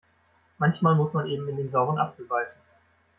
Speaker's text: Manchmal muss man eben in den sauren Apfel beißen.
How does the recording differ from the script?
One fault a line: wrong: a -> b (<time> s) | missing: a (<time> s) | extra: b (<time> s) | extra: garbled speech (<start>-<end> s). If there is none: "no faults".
no faults